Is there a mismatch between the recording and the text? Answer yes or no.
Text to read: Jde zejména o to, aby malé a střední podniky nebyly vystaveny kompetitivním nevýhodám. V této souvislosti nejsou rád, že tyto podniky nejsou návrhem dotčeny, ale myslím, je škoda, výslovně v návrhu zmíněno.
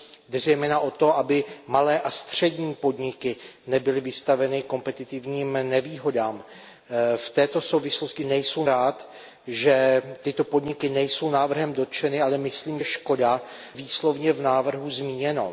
no